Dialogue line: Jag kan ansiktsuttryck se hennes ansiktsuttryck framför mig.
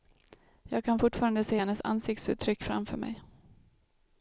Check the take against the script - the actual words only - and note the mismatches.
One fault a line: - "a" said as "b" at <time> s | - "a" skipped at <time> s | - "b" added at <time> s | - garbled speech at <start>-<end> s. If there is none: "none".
- "ansiktsuttryck" said as "fortfarande" at 1.0 s